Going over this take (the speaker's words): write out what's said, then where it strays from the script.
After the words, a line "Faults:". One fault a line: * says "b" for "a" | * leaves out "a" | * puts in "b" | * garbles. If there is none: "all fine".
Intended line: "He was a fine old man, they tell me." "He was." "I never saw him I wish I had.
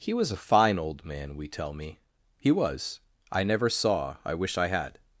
"He was a fine old man, we tell me." "He was." "I never saw I wish I had.
Faults:
* says "we" for "they"
* leaves out "him"